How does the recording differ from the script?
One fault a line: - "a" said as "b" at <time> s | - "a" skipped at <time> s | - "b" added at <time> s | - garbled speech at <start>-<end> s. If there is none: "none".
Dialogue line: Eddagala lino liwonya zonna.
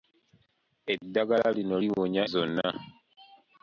none